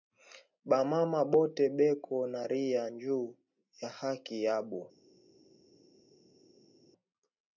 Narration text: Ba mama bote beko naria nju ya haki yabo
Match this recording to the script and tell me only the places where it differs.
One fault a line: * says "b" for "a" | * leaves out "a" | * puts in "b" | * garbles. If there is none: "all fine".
all fine